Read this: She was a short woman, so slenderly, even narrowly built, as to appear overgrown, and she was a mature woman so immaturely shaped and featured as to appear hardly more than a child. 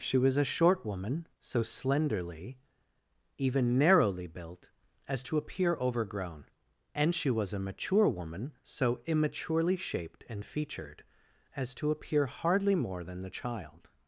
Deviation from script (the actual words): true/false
true